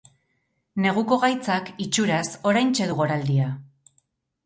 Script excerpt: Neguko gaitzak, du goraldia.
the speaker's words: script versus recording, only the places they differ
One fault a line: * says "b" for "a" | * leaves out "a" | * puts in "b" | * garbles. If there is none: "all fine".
* puts in "itxuraz oraintxe"